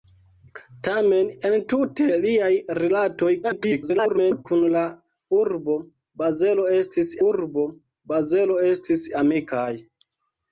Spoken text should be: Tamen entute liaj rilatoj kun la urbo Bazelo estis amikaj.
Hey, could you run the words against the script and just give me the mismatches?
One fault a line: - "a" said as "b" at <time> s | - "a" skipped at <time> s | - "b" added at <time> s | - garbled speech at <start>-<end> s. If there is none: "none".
- garbled speech at 3.4-4.5 s
- "urbo Bazelo estis" added at 7.3 s